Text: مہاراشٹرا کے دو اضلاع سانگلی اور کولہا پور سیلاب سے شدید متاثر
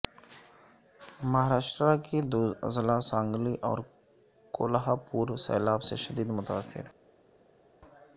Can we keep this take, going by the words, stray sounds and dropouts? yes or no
yes